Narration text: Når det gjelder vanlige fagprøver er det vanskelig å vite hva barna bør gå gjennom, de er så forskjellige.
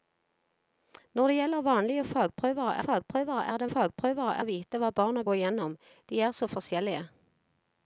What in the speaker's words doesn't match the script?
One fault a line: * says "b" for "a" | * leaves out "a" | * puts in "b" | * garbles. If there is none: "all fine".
* puts in "fagprøver"
* says "fagprøver" for "vanskelig"
* leaves out "bør"